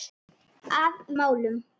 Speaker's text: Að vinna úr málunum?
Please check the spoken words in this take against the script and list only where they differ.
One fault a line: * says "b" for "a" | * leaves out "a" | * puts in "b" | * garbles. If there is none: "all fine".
* leaves out "vinna úr"